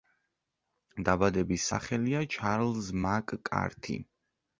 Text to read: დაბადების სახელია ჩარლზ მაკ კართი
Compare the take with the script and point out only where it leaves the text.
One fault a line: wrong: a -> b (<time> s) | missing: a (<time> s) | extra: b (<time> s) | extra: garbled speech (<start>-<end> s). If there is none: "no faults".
no faults